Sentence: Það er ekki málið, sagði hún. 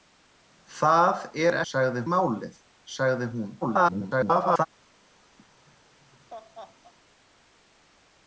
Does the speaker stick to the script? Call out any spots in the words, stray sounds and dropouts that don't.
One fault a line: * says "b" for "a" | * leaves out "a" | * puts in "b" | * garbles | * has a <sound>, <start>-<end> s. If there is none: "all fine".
* says "sagði" for "ekki"
* garbles
* has a laugh, 5.4-6.9 s